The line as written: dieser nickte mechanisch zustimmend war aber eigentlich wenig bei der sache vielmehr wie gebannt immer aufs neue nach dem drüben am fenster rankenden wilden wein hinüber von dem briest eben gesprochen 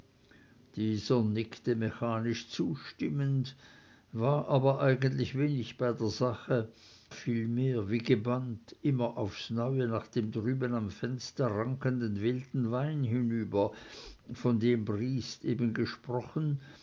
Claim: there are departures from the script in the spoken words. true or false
false